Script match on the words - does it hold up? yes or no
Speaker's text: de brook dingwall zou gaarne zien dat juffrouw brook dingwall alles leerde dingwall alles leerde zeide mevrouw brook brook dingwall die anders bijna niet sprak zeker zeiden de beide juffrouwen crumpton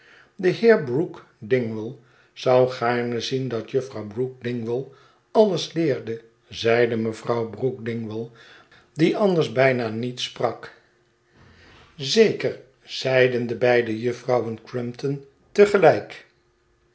no